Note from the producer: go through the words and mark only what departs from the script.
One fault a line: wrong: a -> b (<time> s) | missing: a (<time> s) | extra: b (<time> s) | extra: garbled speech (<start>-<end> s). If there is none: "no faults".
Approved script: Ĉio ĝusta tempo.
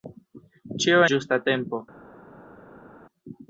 no faults